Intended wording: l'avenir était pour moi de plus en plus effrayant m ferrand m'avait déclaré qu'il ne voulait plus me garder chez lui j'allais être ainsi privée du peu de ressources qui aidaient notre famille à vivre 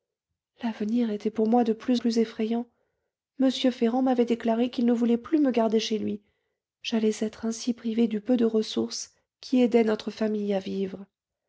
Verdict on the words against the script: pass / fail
fail